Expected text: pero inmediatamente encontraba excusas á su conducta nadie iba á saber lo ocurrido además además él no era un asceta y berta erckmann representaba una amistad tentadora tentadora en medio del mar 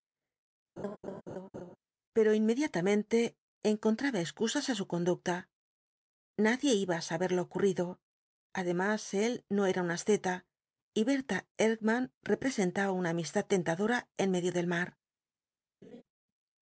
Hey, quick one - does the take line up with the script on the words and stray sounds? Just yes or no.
no